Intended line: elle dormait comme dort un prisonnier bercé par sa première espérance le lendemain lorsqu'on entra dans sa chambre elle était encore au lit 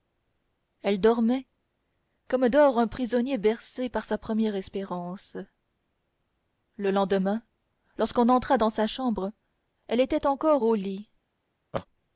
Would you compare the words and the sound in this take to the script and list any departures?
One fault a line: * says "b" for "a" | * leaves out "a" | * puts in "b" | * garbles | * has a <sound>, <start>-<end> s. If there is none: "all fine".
* has a laugh, 11.7-11.9 s